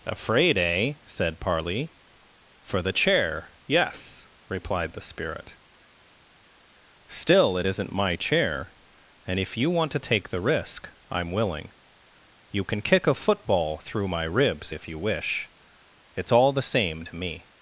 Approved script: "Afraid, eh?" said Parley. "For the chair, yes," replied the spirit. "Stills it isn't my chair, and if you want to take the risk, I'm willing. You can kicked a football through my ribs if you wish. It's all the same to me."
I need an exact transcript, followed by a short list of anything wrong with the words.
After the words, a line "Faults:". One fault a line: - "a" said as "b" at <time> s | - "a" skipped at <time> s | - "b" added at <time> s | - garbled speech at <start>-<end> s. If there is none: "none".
"Afraid, eh?" said Parley. "For the chair, yes," replied the spirit. "Still it isn't my chair, and if you want to take the risk, I'm willing. You can kick a football through my ribs if you wish. It's all the same to me."
Faults:
- "Stills" said as "Still" at 7.1 s
- "kicked" said as "kick" at 12.8 s